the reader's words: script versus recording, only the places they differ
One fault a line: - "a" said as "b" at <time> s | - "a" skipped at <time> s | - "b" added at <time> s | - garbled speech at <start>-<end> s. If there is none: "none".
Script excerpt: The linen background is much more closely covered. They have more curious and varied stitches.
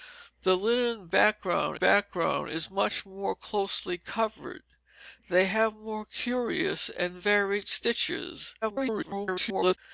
- "background" added at 1.7 s
- garbled speech at 8.6-9.8 s